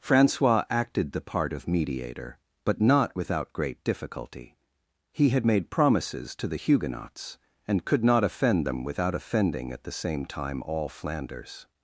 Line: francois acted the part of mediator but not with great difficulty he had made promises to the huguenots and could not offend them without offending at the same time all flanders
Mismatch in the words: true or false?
true